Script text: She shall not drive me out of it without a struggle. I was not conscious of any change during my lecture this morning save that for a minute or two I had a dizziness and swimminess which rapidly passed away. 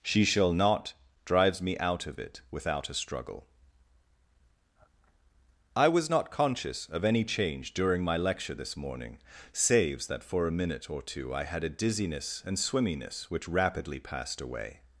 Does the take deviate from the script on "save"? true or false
true